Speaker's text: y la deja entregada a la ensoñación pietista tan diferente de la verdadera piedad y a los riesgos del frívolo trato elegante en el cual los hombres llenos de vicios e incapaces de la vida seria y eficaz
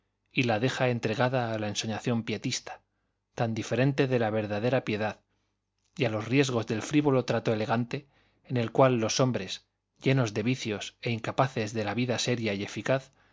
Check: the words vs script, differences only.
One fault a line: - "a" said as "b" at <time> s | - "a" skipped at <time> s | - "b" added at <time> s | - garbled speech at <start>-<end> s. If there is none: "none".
none